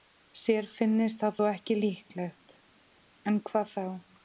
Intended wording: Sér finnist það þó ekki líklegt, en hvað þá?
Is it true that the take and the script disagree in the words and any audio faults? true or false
false